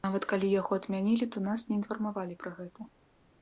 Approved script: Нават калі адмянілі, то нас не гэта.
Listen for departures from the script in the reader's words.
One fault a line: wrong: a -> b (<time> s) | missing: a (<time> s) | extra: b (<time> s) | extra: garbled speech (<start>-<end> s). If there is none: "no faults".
extra: яго (0.6 s)
extra: інфармавалі пра (1.8 s)